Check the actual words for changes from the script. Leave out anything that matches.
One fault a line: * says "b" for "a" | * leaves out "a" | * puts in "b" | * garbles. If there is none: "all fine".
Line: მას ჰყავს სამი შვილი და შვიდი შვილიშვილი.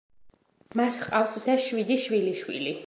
* leaves out "სამი შვილი"